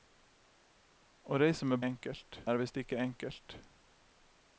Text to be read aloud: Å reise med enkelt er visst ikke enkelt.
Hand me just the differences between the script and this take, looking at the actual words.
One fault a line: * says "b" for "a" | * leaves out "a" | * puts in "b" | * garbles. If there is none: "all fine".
all fine